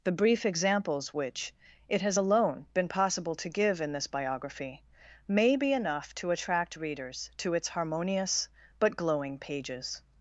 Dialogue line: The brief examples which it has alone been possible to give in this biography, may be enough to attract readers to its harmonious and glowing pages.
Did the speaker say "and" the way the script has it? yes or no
no